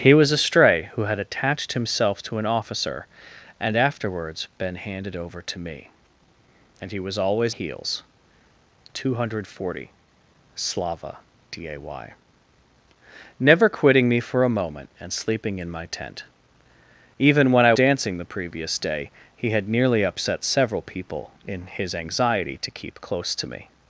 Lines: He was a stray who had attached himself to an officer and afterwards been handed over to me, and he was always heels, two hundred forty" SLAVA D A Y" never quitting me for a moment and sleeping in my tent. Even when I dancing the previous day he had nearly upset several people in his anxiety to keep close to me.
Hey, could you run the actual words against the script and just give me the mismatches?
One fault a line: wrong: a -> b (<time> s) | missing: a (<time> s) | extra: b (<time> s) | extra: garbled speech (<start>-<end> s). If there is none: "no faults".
no faults